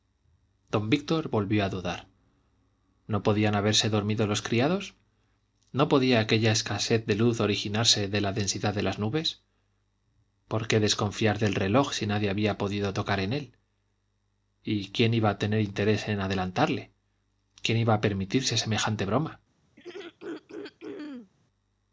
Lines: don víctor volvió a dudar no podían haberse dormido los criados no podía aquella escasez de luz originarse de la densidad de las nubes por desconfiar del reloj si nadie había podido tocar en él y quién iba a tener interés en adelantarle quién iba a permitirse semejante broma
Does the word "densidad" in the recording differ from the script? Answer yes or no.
no